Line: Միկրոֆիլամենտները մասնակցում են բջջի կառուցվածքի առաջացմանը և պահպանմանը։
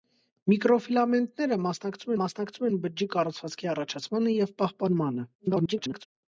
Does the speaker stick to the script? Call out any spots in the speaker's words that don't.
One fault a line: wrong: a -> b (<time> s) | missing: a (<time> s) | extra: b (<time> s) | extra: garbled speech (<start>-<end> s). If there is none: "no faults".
extra: մասնակցում (2.2 s)
extra: garbled speech (5.4-6.1 s)